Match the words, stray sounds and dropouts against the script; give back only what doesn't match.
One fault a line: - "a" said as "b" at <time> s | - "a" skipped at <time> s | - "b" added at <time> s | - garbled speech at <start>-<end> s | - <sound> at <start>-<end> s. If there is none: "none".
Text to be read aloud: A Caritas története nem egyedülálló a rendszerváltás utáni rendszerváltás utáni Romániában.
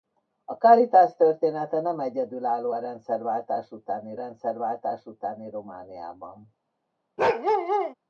- bark at 7.2-7.9 s